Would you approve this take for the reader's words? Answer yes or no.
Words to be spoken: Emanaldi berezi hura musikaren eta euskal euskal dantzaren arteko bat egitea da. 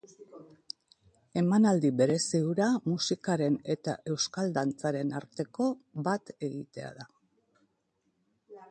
no